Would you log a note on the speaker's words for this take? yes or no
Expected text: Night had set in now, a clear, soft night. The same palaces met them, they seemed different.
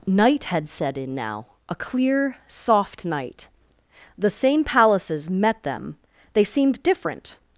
no